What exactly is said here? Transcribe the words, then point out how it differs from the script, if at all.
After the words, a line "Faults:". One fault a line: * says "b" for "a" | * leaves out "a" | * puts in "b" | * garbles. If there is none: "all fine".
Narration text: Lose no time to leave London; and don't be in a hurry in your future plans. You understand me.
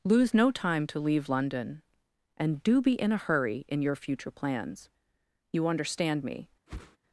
Lose no time to leave London; and do be in a hurry in your future plans. You understand me.
Faults:
* says "do" for "don't"